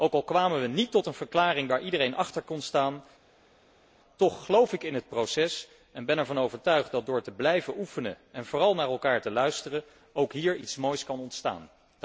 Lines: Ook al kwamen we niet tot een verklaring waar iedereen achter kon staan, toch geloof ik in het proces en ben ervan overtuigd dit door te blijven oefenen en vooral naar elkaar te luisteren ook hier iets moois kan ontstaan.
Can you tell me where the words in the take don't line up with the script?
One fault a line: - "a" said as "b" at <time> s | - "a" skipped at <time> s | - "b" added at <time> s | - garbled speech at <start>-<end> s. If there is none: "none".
- "dit" said as "dat" at 6.9 s